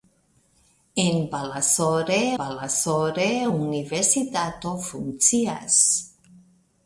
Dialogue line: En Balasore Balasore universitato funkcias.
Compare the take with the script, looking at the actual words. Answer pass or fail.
pass